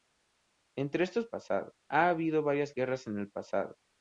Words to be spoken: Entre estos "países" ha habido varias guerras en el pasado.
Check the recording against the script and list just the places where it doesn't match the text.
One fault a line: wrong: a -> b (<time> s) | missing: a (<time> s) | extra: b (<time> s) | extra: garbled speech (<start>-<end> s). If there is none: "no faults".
wrong: países -> pasado (1.3 s)